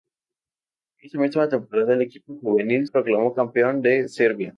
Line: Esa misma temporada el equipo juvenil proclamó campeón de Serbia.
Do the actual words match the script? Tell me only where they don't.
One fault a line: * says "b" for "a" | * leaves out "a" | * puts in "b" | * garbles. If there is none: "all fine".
all fine